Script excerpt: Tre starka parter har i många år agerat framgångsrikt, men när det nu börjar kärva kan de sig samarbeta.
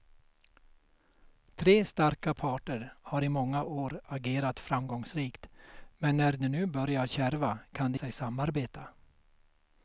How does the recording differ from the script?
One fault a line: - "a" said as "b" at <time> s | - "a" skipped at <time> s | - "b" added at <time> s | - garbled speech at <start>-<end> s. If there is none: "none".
none